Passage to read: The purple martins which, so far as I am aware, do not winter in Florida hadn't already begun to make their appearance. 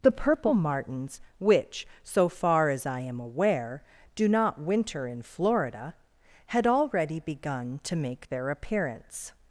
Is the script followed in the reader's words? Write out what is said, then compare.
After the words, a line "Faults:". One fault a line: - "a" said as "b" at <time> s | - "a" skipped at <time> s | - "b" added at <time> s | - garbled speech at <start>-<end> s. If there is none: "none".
The purple martins which, so far as I am aware, do not winter in Florida had already begun to make their appearance.
Faults:
- "hadn't" said as "had" at 6.5 s